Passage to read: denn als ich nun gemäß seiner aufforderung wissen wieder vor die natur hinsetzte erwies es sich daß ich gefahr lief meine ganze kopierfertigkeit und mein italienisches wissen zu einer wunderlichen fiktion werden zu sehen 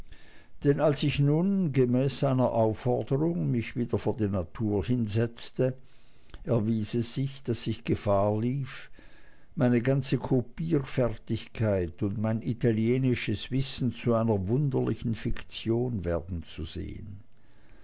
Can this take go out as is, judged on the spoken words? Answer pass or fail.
fail